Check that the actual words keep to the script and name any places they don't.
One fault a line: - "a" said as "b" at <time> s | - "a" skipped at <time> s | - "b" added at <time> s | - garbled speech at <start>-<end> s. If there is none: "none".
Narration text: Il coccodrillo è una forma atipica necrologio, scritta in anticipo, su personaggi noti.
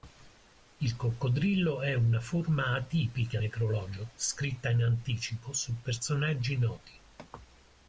none